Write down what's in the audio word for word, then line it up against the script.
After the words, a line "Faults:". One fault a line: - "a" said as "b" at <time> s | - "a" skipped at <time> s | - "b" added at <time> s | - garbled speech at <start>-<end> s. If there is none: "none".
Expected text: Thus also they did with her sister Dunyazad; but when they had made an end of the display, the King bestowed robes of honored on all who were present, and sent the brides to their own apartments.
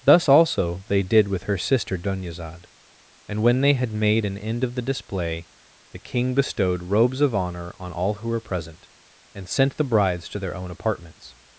Thus also they did with her sister Dunyazad; and when they had made an end of the display, the King bestowed robes of honor on all who were present, and sent the brides to their own apartments.
Faults:
- "but" said as "and" at 3.3 s
- "honored" said as "honor" at 7.3 s